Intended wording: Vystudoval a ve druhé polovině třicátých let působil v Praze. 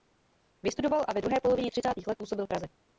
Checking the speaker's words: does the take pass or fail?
pass